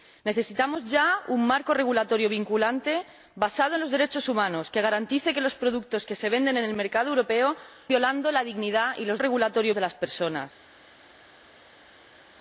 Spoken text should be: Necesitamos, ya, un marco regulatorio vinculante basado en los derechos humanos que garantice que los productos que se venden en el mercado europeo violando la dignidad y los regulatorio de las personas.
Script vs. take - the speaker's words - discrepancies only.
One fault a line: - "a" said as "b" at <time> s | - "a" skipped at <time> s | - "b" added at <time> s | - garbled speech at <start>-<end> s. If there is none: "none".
none